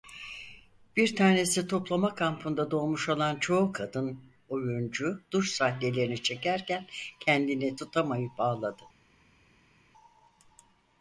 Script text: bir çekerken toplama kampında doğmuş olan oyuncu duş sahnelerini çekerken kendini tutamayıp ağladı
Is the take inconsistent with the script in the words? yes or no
yes